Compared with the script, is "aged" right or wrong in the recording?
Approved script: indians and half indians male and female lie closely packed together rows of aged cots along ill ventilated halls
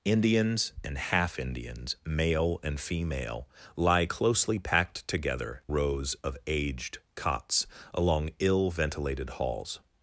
right